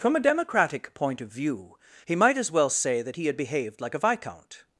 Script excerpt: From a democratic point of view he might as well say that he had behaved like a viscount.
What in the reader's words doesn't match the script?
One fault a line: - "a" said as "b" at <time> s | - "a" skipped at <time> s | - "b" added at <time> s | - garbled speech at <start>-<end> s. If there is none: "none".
none